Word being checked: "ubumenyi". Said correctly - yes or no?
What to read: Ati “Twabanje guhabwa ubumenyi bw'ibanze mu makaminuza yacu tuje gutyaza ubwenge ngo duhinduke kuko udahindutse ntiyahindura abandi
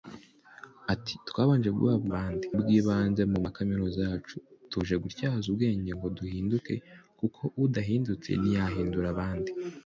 no